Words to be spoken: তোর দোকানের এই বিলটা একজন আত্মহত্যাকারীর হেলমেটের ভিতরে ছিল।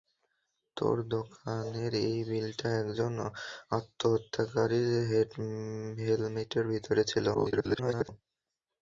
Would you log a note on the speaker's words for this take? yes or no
yes